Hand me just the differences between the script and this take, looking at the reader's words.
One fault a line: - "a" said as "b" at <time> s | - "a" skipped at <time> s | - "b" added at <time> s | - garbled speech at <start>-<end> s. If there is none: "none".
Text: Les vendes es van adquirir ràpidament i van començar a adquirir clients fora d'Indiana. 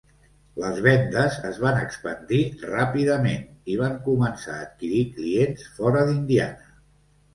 - "adquirir" said as "expandir" at 1.8 s